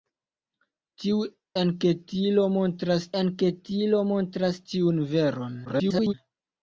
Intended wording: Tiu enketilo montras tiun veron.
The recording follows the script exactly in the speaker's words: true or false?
false